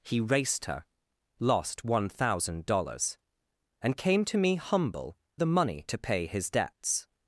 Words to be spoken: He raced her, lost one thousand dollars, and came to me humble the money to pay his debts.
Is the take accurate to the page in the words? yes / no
yes